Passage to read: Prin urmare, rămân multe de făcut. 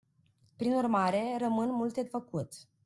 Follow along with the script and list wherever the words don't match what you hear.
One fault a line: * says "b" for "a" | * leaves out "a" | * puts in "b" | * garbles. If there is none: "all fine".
* leaves out "de"